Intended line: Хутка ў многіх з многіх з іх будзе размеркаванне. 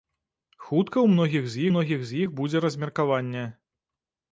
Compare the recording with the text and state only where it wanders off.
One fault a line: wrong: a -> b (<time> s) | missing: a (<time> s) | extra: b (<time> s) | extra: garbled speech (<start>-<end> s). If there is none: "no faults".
no faults